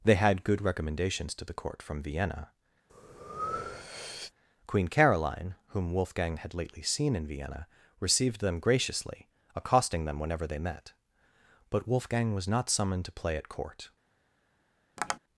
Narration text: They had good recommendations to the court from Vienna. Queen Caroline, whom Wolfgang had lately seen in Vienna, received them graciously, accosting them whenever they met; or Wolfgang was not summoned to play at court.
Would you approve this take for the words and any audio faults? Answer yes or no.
no